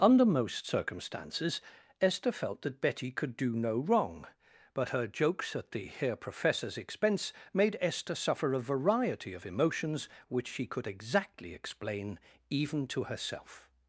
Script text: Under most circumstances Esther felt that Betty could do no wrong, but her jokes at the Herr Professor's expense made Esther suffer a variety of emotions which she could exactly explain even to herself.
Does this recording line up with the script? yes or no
yes